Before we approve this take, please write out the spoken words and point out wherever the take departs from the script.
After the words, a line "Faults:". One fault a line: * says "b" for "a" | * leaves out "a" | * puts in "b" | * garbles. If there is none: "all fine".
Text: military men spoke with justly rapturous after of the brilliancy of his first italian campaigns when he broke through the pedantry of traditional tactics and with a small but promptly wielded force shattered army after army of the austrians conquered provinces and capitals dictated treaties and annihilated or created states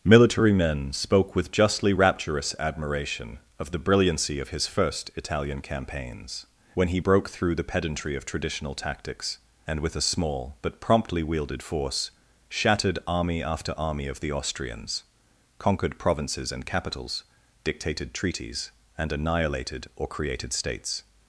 military men spoke with justly rapturous admiration of the brilliancy of his first italian campaigns when he broke through the pedantry of traditional tactics and with a small but promptly wielded force shattered army after army of the austrians conquered provinces and capitals dictated treaties and annihilated or created states
Faults:
* says "admiration" for "after"